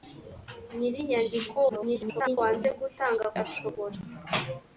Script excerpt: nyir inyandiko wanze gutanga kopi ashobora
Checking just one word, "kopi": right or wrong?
wrong